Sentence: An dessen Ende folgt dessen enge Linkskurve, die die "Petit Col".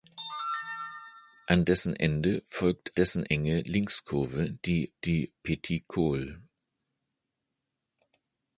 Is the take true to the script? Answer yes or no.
yes